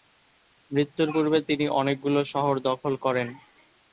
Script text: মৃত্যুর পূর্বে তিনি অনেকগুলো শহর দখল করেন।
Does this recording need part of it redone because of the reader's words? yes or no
no